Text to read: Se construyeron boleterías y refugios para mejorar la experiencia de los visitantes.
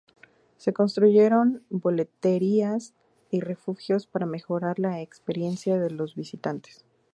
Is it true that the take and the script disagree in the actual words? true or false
false